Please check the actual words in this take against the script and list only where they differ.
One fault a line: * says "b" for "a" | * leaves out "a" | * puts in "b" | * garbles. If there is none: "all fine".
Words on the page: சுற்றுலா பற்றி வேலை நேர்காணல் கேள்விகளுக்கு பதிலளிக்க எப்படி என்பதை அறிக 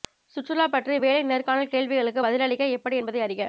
all fine